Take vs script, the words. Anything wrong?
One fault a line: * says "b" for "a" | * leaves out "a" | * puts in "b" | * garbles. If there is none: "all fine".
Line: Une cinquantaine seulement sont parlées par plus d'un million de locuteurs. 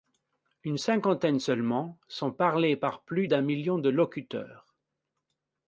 all fine